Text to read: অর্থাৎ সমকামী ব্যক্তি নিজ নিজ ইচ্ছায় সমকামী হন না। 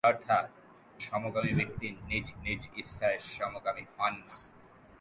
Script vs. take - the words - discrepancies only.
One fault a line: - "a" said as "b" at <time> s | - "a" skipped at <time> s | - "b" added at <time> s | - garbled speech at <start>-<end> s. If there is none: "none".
none